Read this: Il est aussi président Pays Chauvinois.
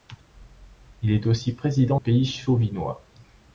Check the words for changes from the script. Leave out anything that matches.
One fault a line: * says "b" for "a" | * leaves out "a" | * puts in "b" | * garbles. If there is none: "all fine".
all fine